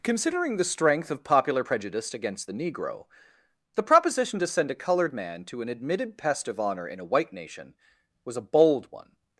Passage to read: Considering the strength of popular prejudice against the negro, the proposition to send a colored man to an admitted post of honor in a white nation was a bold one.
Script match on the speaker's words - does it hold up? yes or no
no